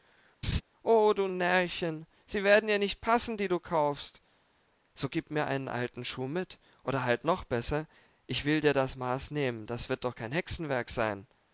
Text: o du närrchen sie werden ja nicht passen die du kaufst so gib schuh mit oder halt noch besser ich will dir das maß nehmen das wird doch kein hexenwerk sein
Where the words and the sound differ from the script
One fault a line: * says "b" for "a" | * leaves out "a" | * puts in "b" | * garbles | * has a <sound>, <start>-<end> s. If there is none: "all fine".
* has a laugh, 0.4-0.6 s
* puts in "mir einen alten"